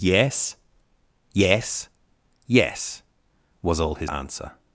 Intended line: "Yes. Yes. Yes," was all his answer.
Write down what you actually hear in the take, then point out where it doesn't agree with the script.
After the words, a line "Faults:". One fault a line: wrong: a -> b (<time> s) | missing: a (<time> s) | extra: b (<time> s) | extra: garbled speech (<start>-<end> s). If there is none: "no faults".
"Yes. Yes. Yes," was all his answer.
Faults:
no faults